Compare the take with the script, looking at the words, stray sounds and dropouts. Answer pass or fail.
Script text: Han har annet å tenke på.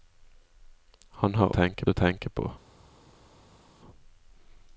fail